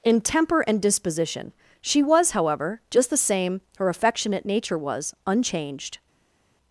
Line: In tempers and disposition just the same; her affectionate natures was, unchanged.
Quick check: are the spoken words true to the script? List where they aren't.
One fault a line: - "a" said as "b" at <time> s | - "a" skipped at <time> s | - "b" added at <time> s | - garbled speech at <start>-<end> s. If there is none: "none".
- "tempers" said as "temper" at 0.2 s
- "she was however" added at 1.8 s
- "natures" said as "nature" at 4.4 s